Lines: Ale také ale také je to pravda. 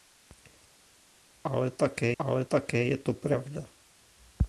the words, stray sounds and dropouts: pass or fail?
pass